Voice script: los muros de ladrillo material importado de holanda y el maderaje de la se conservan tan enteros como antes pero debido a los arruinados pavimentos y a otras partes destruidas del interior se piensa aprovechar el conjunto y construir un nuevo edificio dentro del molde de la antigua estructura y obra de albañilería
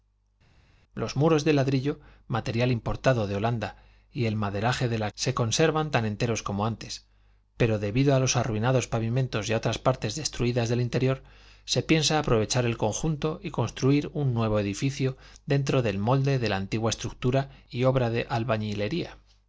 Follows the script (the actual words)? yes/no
yes